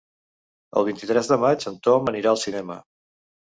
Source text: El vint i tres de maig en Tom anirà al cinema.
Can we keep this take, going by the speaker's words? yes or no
yes